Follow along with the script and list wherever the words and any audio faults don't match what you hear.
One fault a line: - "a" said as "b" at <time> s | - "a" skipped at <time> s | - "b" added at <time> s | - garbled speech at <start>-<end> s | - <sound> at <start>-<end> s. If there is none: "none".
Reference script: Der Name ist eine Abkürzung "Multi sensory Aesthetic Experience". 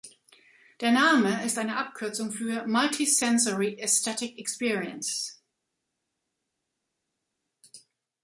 - "für" added at 2.3 s